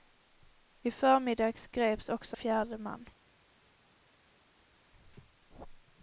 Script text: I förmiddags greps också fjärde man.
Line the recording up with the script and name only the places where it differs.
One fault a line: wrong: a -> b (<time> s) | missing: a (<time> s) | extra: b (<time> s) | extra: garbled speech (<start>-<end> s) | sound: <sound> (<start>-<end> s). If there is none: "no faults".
no faults